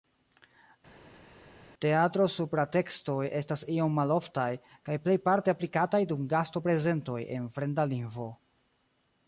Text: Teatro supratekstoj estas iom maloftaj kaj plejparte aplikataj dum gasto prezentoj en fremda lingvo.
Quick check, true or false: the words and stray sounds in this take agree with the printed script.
true